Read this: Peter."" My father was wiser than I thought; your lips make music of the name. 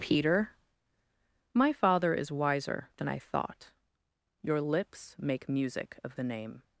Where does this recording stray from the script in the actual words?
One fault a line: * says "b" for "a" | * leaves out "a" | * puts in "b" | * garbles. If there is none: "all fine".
* says "is" for "was"